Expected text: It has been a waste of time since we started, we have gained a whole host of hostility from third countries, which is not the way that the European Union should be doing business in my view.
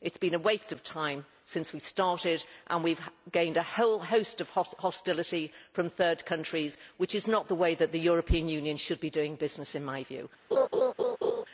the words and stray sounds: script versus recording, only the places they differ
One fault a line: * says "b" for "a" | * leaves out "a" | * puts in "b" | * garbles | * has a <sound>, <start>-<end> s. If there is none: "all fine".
* puts in "and"
* has a laugh, 10.5-11.4 s